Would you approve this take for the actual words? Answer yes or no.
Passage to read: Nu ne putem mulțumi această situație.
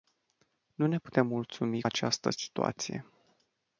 yes